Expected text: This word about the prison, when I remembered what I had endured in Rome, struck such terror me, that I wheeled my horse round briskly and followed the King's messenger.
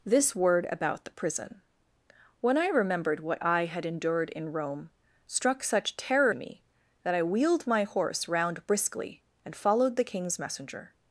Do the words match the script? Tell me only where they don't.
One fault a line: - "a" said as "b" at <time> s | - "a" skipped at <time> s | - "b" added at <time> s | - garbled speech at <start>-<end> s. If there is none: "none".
none